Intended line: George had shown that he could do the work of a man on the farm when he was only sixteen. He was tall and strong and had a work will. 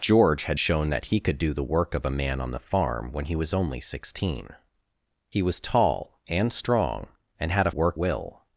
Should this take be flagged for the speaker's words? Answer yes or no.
no